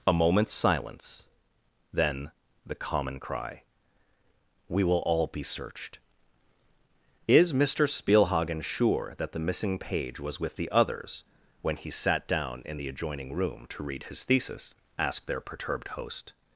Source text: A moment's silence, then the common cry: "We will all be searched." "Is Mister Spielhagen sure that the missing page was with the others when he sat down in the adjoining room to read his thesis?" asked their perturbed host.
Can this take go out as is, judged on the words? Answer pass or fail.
pass